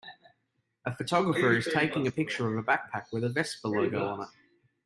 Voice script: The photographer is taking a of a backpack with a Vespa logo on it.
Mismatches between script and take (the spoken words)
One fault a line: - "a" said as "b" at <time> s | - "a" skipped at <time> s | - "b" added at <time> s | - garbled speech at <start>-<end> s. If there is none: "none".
- "The" said as "A" at 0.8 s
- "picture" added at 2.1 s